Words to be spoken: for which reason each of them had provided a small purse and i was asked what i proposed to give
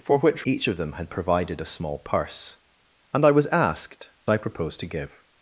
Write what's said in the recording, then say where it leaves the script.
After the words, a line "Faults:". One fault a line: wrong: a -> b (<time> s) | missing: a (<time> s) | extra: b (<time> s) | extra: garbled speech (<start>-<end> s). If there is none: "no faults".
for which each of them had provided a small purse and i was asked i proposed to give
Faults:
missing: reason (0.5 s)
missing: what (4.1 s)